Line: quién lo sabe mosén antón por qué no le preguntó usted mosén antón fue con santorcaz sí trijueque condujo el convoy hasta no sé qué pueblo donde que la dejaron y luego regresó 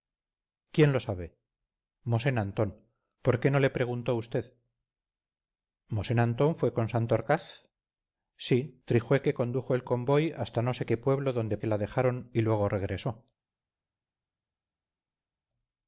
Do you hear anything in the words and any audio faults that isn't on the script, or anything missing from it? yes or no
no